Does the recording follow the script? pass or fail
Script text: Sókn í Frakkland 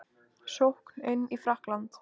fail